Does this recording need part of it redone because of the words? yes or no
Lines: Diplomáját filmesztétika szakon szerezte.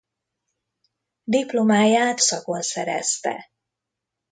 yes